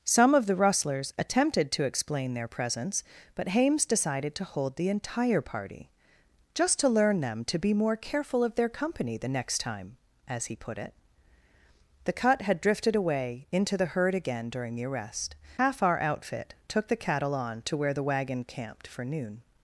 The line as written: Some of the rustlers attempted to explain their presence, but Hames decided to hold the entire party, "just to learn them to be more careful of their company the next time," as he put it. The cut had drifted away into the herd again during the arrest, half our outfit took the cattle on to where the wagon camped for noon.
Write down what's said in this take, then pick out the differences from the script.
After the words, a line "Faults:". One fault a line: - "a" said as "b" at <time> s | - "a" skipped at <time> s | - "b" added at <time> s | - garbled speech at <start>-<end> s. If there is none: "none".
Some of the rustlers attempted to explain their presence, but Hames decided to hold the entire party, "just to learn them to be more careful of their company the next time," as he put it. The cut had drifted away into the herd again during the arrest, half our outfit took the cattle on to where the wagon camped for noon.
Faults:
none